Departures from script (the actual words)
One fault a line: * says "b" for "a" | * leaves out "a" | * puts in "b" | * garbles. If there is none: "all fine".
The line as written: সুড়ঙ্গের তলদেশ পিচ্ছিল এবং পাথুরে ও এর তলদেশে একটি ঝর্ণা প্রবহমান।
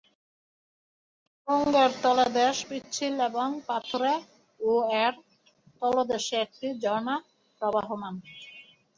all fine